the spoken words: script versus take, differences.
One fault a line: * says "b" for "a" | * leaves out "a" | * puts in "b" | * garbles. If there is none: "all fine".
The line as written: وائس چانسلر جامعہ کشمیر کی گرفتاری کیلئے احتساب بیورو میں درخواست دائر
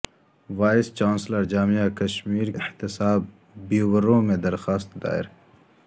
* leaves out "کی گرفتاری کیلئے"